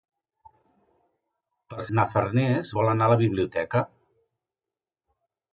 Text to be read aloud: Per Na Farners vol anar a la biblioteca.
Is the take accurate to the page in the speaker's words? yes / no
yes